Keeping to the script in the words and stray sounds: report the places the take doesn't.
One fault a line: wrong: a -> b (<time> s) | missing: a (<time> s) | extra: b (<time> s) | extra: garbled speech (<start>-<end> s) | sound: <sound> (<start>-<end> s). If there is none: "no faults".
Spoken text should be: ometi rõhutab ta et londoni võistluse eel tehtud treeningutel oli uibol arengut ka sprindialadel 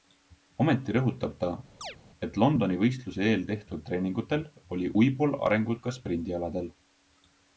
sound: chirp (1.8-2.0 s)